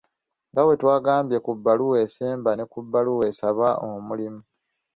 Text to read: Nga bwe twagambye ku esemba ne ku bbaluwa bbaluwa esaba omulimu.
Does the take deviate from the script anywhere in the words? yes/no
yes